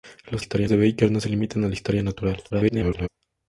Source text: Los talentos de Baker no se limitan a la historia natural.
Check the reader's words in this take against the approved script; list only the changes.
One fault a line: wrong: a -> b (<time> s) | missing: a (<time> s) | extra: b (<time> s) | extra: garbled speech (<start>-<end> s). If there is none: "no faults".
wrong: talentos -> historia (0.4 s)
extra: garbled speech (2.5-3.1 s)